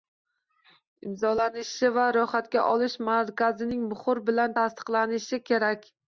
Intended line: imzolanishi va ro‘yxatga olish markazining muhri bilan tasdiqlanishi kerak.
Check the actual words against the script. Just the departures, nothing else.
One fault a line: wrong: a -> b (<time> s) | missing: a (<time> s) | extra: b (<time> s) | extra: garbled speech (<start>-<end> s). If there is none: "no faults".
no faults